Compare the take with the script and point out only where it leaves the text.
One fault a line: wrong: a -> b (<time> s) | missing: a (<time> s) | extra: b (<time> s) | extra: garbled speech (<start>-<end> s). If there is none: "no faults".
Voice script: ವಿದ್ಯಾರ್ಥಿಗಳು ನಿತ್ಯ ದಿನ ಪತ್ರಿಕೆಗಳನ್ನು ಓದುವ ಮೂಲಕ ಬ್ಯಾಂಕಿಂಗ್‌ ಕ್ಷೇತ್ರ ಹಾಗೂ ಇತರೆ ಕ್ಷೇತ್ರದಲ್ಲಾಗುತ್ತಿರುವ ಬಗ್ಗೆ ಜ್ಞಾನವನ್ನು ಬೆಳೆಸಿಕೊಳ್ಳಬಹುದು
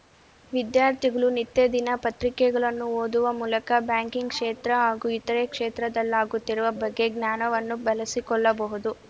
no faults